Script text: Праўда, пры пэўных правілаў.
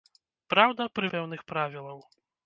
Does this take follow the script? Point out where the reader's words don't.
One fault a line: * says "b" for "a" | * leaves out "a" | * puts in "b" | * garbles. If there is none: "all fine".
all fine